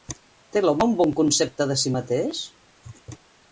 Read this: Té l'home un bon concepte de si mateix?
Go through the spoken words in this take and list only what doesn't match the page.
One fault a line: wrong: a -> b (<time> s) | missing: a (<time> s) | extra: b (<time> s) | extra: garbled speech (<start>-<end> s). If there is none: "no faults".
no faults